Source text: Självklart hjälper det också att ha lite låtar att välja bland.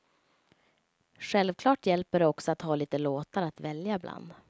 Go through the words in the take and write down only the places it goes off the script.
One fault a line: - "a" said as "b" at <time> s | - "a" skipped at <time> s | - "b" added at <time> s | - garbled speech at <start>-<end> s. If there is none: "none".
none